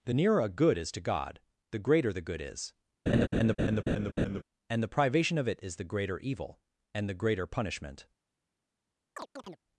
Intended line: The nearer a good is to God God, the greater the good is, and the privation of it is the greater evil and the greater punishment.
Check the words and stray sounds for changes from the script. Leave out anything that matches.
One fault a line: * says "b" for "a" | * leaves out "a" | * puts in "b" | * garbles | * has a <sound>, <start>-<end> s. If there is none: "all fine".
* leaves out "God"
* has a laugh, 3.1-4.4 s
* has a chirp, 9.2-9.6 s